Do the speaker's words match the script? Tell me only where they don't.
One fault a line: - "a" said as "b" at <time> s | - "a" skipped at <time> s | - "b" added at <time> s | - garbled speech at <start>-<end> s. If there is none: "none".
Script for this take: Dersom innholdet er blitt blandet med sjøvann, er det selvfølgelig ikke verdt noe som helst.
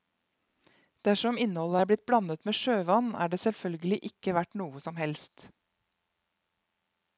none